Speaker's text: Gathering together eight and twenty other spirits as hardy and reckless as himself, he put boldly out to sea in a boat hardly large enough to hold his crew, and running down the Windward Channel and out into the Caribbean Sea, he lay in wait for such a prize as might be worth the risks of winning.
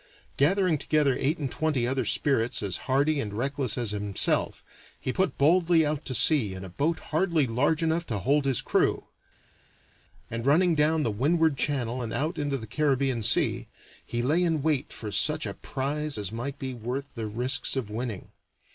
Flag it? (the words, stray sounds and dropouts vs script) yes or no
no